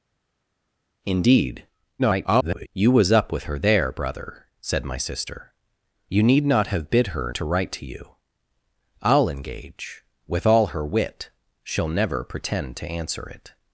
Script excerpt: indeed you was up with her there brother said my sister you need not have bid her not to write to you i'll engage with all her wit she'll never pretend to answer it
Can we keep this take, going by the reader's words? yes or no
no